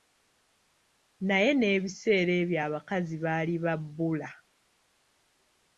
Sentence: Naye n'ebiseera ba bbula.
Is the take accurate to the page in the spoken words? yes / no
no